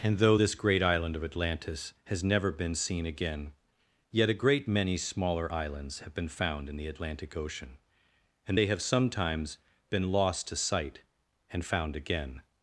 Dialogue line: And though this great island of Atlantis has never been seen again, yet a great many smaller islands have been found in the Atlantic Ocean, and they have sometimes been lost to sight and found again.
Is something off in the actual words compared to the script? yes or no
no